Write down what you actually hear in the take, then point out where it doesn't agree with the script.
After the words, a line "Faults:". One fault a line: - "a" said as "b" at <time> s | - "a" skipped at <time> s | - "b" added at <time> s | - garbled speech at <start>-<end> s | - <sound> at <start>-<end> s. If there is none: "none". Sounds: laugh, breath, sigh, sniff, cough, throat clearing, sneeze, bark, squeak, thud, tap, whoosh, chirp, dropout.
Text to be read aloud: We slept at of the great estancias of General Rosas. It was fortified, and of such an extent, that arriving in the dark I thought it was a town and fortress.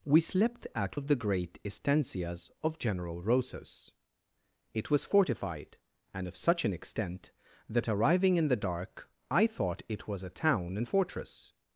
We slept at of the great estancias of General Rosas. It was fortified, and of such an extent, that arriving in the dark I thought it was a town and fortress.
Faults:
none